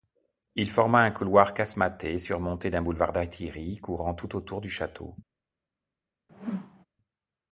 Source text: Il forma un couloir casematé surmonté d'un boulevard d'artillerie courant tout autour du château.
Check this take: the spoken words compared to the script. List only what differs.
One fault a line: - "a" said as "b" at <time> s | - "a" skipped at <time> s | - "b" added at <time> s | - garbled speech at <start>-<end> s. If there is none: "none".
none